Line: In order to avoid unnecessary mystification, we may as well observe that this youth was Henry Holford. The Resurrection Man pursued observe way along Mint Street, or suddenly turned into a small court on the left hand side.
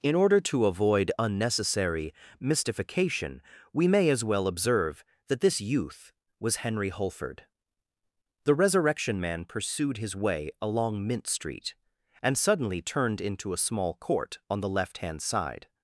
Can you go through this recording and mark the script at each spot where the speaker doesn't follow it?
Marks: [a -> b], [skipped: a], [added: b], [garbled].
In order to avoid unnecessary mystification, we may as well observe that this youth was Henry Holford. The Resurrection Man pursued [observe -> his] way along Mint Street, [or -> and] suddenly turned into a small court on the left hand side.